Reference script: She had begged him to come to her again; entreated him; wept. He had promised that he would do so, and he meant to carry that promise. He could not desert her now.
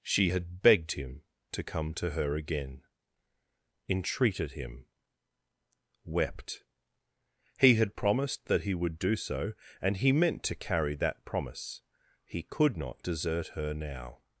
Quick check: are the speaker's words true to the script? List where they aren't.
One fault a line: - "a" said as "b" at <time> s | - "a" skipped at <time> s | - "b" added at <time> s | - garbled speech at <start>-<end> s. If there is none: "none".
none